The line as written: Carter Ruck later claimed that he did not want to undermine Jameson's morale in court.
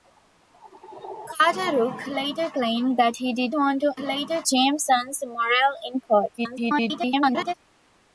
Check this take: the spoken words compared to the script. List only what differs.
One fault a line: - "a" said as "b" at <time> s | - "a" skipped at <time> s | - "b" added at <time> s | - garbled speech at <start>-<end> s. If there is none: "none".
- "not" skipped at 3.5 s
- "undermine" said as "later" at 4.0 s
- garbled speech at 6.4-7.5 s